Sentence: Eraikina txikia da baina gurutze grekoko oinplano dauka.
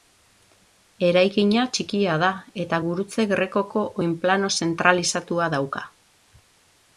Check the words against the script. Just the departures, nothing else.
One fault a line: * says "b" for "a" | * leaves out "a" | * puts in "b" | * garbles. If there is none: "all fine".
* says "eta" for "baina"
* puts in "zentralizatua"